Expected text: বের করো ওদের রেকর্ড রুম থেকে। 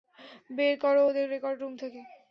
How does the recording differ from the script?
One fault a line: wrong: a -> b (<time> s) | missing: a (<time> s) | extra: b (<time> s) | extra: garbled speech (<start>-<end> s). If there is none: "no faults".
no faults